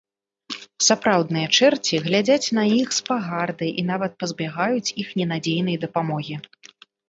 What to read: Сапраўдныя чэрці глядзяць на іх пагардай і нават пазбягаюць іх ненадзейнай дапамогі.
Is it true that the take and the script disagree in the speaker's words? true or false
true